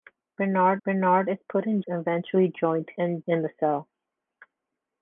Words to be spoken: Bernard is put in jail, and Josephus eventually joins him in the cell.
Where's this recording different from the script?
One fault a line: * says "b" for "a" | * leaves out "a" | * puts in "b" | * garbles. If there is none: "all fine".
* puts in "bernard"
* leaves out "jail and Josephus"
* says "and" for "him"